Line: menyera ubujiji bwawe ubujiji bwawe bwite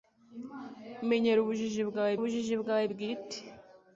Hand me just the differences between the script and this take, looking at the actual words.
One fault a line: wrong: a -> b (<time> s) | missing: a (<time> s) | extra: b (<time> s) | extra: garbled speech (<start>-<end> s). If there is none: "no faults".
no faults